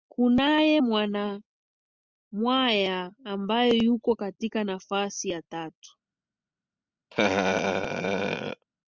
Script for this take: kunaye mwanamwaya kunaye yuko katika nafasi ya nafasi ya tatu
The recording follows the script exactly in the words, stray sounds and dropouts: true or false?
false